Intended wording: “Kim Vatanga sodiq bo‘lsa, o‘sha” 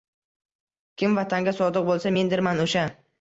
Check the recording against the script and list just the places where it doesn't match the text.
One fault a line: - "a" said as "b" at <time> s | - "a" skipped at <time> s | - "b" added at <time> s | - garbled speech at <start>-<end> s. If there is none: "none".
- "mendirman" added at 2.1 s